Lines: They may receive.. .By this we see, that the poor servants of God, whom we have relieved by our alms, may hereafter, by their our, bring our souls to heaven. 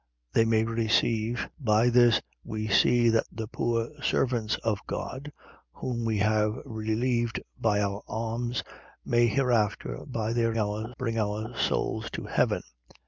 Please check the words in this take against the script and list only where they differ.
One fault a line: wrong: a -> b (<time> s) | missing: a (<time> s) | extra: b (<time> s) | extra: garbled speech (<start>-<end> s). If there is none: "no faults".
no faults